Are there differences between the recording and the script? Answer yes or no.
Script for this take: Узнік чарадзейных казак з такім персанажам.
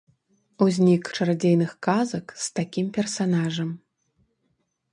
no